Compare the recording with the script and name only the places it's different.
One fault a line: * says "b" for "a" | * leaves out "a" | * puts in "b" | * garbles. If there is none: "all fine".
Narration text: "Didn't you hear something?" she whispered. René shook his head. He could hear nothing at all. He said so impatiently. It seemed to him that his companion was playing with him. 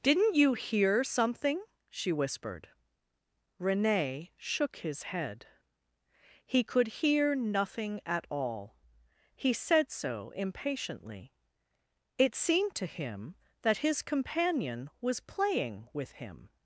all fine